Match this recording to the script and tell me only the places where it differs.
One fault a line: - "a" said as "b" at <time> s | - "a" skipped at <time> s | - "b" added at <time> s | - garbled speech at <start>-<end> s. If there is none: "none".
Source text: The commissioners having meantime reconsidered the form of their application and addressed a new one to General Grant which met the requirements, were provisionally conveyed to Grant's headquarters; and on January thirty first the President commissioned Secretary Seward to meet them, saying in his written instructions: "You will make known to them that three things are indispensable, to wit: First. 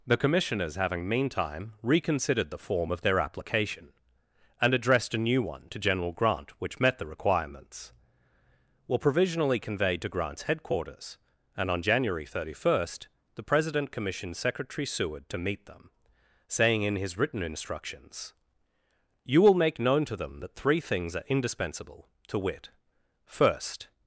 none